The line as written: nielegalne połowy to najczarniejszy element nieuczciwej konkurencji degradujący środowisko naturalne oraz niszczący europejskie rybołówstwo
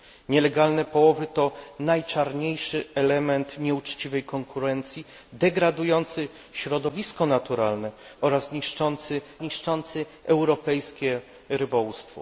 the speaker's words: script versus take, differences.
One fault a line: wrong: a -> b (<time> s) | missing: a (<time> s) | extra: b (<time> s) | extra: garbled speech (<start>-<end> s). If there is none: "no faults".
extra: niszczący (9.4 s)